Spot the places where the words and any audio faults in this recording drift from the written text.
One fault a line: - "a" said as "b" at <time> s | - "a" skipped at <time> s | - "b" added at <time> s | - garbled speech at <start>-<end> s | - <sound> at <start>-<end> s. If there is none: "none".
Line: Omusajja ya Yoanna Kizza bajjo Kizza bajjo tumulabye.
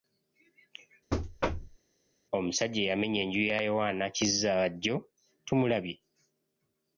- thud at 1.1-1.8 s
- "eyamenya enju" added at 2.8 s
- "Kizza bajjo" skipped at 5.0 s